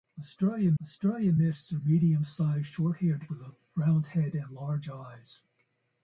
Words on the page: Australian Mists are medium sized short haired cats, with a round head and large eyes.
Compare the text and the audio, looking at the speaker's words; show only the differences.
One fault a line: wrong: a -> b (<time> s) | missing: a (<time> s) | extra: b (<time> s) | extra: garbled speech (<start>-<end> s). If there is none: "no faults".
extra: australian (0.8 s)
missing: cats (3.3 s)